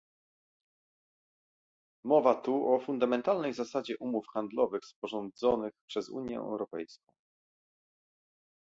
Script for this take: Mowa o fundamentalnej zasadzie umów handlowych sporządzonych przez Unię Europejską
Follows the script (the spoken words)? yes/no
no